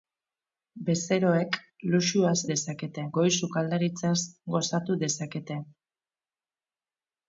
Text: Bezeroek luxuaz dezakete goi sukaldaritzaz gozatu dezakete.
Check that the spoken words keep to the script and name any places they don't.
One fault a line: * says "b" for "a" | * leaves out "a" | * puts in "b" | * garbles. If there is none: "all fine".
all fine